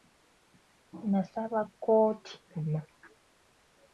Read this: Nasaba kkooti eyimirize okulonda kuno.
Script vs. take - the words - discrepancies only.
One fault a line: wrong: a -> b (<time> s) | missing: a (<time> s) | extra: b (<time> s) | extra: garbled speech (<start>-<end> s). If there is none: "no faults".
missing: eyimirize okulonda (2.3 s)